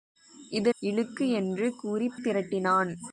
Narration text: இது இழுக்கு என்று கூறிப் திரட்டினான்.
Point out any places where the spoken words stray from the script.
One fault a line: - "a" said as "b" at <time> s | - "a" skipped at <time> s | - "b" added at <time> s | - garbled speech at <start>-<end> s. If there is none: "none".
none